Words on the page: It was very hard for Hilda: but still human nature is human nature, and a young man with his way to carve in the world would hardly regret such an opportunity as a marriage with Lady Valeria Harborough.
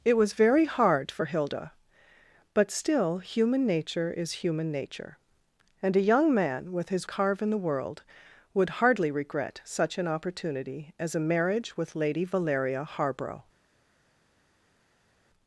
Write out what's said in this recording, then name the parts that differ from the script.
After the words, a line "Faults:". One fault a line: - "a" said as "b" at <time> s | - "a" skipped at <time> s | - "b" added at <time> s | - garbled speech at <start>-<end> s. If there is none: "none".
It was very hard for Hilda: but still human nature is human nature, and a young man with his carve in the world would hardly regret such an opportunity as a marriage with Lady Valeria Harborough.
Faults:
- "way to" skipped at 7.1 s